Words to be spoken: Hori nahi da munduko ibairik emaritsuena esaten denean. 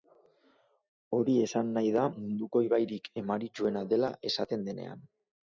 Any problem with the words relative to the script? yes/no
yes